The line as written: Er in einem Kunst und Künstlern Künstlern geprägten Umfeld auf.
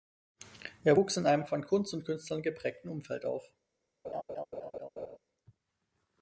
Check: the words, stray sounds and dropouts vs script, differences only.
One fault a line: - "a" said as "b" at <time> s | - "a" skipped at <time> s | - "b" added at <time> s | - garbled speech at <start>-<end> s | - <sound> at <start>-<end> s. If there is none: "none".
- "wuchs" added at 0.9 s
- "von" added at 1.5 s
- "Künstlern" skipped at 2.4 s
- laugh at 4.0-5.2 s